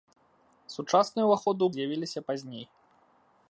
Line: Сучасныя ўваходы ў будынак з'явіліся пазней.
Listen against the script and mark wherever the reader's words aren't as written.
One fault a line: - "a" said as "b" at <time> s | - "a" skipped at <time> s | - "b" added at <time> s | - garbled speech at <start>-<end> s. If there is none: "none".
- "будынак" skipped at 1.7 s